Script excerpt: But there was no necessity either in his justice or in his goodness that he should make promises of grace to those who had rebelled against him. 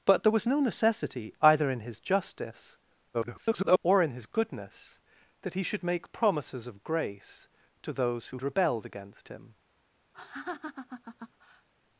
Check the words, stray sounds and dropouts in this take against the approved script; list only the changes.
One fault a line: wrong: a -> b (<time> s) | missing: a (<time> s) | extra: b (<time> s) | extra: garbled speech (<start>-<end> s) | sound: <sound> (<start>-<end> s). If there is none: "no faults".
extra: garbled speech (3.1-3.8 s)
missing: had (8.4 s)
sound: laugh (10.1-11.7 s)